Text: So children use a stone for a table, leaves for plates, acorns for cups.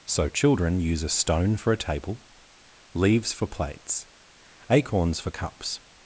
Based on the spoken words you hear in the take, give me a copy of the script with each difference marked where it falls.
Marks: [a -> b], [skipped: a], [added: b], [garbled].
So children use a stone for a table, leaves for plates, acorns for cups.